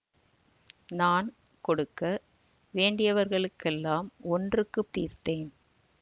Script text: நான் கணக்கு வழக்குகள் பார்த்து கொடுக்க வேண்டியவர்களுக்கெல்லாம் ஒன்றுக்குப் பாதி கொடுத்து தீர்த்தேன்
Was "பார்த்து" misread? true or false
true